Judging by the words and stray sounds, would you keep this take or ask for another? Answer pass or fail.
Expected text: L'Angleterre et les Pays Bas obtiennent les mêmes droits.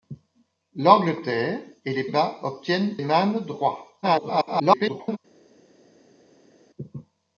fail